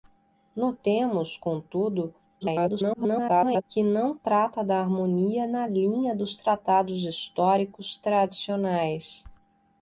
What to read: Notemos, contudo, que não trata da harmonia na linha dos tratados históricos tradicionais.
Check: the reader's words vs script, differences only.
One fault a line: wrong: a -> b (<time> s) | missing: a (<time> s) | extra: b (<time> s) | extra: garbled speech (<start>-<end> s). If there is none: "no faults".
extra: garbled speech (2.4-3.6 s)